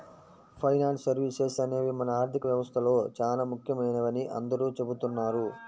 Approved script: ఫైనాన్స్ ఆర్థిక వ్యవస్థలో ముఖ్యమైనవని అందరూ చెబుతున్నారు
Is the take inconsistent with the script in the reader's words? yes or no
yes